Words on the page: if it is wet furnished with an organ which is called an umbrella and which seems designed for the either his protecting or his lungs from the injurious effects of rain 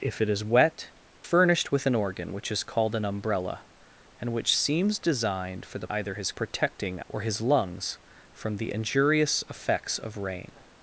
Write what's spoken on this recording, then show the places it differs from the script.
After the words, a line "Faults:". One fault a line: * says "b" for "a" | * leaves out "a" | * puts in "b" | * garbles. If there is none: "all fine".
if it is wet furnished with an organ which is called an umbrella and which seems designed for the either his protecting or his lungs from the injurious effects of rain
Faults:
all fine